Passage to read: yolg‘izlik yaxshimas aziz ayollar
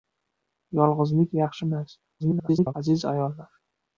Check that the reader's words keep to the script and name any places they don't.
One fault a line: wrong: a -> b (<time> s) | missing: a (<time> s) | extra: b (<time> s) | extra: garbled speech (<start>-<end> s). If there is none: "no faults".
extra: garbled speech (2.2-2.7 s)